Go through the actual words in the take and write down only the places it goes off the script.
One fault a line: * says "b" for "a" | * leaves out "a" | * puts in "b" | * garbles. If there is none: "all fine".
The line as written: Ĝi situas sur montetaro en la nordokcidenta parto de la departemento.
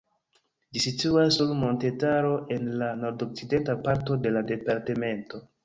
all fine